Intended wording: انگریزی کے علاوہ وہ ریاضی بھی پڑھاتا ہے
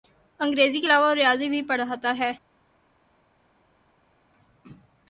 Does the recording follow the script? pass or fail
pass